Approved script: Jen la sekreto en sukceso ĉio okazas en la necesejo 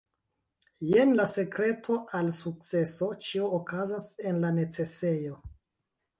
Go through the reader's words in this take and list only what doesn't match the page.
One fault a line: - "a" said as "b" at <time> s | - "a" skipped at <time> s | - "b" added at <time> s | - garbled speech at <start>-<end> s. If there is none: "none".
- "en" said as "al" at 2.2 s